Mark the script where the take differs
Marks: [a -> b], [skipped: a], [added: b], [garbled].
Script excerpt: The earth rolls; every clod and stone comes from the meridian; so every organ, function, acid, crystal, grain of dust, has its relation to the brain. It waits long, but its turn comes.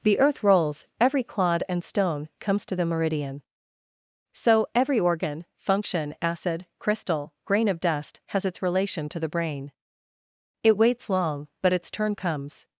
The earth rolls; every clod and stone comes [from -> to] the meridian; so every organ, function, acid, crystal, grain of dust, has its relation to the brain. It waits long, but its turn comes.